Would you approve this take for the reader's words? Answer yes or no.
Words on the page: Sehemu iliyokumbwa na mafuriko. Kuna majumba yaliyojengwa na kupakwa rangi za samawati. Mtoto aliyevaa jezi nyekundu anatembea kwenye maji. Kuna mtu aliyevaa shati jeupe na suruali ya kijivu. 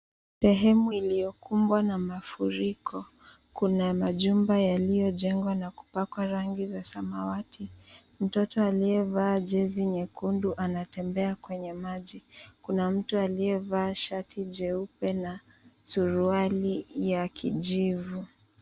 yes